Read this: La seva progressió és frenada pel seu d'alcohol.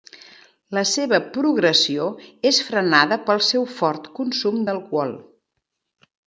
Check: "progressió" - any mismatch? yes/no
no